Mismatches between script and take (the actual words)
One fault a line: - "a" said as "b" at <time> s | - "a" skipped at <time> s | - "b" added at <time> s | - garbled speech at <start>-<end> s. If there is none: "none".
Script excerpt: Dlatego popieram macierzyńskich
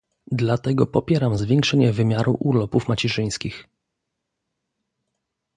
- "zwiększenie wymiaru urlopów" added at 1.4 s